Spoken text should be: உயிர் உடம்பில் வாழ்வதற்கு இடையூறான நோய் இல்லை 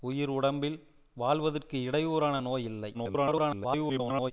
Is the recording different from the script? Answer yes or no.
yes